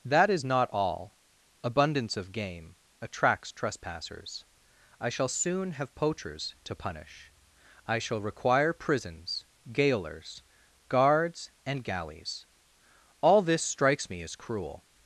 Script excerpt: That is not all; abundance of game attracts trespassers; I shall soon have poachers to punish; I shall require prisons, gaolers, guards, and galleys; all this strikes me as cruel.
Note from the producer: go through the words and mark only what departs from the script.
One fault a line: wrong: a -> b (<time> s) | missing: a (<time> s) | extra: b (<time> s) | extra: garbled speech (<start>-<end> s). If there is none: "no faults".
no faults